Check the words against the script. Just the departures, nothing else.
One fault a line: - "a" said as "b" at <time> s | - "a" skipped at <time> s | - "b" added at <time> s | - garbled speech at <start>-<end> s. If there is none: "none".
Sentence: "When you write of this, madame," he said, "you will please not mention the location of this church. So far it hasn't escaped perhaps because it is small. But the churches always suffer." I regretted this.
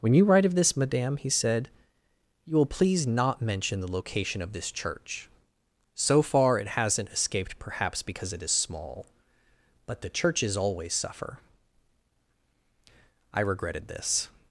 none